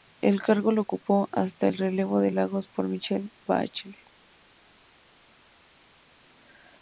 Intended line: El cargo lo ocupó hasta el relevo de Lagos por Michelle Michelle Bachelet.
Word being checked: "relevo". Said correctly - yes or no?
yes